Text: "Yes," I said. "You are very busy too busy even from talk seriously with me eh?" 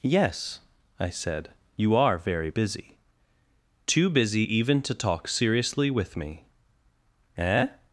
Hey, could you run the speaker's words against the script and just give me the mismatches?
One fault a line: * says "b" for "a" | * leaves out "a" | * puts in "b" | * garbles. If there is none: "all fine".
* says "to" for "from"